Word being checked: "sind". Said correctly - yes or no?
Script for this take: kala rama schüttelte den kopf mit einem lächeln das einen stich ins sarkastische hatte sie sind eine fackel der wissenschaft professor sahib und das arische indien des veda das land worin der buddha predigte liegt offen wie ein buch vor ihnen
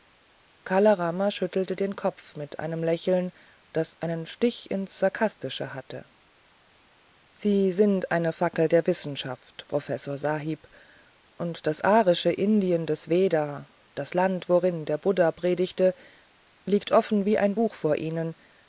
yes